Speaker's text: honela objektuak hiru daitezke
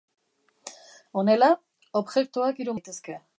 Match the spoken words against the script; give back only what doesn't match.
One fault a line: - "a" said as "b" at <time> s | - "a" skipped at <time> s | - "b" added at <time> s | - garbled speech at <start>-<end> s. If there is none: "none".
none